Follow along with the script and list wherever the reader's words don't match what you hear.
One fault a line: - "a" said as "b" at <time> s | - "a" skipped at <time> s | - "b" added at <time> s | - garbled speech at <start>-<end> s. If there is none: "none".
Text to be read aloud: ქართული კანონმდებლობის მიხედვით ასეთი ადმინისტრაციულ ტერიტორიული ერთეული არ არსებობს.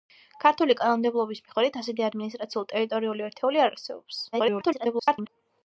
- garbled speech at 4.3-5.3 s